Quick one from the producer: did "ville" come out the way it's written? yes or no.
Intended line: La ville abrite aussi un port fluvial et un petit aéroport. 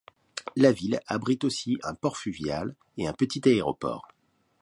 yes